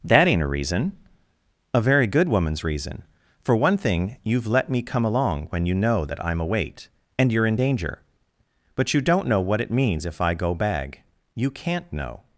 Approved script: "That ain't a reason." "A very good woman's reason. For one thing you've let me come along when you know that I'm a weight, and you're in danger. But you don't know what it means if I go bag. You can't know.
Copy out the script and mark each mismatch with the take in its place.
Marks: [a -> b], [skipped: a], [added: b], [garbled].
"That ain't a reason." "A very good woman's reason. For one thing you've let me come along when you know that I'm a weight, and you're in danger. But you don't know what it means if I go bag. You can't know.